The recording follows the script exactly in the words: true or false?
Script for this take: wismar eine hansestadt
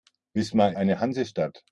true